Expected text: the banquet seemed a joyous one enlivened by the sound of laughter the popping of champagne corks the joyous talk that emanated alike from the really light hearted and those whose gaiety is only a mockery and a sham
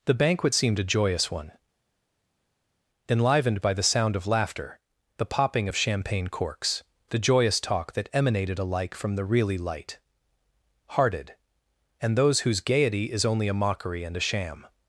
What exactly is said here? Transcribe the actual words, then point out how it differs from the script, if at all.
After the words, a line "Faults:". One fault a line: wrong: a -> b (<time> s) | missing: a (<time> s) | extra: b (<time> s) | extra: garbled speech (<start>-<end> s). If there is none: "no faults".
the banquet seemed a joyous one enlivened by the sound of laughter the popping of champagne corks the joyous talk that emanated alike from the really light hearted and those whose gaiety is only a mockery and a sham
Faults:
no faults